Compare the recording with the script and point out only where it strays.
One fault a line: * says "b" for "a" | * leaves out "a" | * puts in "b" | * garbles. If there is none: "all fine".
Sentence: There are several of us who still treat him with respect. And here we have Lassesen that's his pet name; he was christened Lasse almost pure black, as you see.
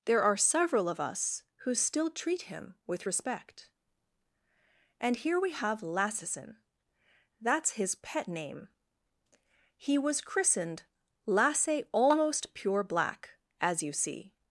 all fine